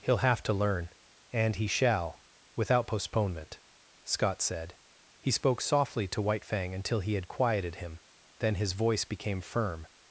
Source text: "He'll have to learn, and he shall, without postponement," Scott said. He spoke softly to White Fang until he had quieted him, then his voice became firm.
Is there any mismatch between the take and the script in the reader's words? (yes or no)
no